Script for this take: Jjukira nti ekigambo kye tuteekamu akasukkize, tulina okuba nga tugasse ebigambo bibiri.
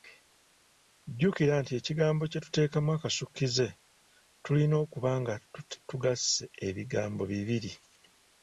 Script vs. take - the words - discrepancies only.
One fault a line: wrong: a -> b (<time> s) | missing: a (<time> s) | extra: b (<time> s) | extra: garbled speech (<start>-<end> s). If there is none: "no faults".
no faults